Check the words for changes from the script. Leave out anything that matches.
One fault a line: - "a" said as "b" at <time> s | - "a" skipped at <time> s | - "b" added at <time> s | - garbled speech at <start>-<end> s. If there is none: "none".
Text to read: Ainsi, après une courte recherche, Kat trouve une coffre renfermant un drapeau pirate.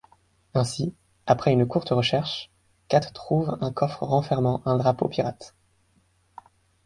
- "une" said as "un" at 3.6 s